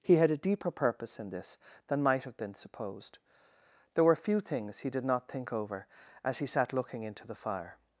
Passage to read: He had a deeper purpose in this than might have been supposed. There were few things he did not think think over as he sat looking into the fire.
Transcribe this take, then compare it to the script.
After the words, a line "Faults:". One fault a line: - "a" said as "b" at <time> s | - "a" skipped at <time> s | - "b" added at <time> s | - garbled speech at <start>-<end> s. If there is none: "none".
He had a deeper purpose in this than might have been supposed. There were few things he did not think over as he sat looking into the fire.
Faults:
- "think" skipped at 5.5 s